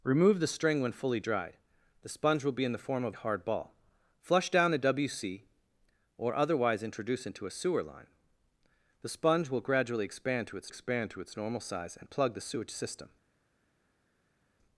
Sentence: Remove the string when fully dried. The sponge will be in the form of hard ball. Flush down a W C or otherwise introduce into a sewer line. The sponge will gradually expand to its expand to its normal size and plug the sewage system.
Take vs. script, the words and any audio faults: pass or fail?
pass